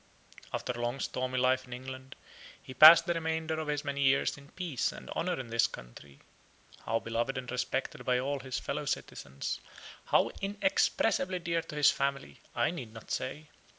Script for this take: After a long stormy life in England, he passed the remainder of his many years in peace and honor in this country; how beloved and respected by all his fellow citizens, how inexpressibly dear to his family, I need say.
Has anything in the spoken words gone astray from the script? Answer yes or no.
yes